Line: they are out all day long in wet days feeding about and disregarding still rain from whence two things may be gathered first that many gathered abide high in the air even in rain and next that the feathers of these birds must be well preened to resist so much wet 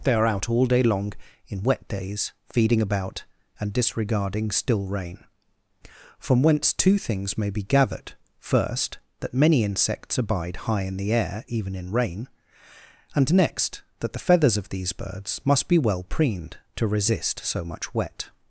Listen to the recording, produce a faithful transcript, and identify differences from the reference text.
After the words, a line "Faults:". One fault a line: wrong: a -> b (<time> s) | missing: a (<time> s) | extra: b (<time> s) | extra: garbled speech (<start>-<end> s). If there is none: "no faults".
they are out all day long in wet days feeding about and disregarding still rain from whence two things may be gathered first that many insects abide high in the air even in rain and next that the feathers of these birds must be well preened to resist so much wet
Faults:
wrong: gathered -> insects (9.6 s)